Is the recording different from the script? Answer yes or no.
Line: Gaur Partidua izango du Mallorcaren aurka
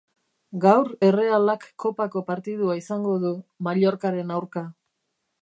yes